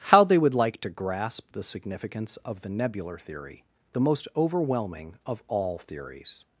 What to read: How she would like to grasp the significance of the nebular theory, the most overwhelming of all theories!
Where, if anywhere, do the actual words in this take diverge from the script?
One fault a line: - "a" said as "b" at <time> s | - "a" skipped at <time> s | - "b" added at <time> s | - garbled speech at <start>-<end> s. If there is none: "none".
- "she" said as "they" at 0.2 s